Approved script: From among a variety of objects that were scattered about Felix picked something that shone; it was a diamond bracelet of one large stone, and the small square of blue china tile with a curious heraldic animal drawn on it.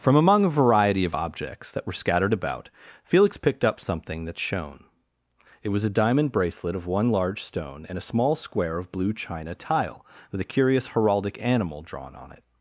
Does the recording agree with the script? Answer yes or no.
no